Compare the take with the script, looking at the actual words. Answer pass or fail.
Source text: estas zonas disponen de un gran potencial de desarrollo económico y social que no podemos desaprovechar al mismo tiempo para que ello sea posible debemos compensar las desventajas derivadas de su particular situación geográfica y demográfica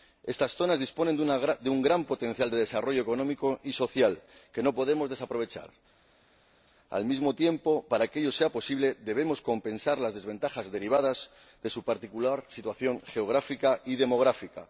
pass